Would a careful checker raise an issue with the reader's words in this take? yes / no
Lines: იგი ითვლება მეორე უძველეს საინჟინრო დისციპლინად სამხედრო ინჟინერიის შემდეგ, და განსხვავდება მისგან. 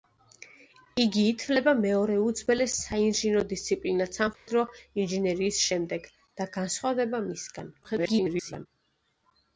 yes